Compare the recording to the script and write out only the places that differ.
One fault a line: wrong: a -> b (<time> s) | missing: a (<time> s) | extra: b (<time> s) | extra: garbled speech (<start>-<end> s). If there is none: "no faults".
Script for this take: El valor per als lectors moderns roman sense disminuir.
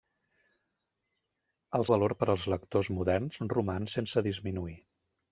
no faults